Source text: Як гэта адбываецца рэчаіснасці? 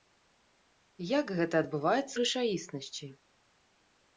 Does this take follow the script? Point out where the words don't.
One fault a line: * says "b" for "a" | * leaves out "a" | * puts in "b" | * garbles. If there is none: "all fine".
all fine